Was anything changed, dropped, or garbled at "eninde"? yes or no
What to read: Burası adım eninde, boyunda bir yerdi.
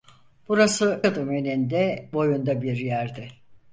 no